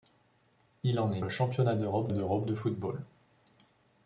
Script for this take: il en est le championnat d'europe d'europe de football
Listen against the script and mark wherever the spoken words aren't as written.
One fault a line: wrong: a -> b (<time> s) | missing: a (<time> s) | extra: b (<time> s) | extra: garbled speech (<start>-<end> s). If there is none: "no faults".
no faults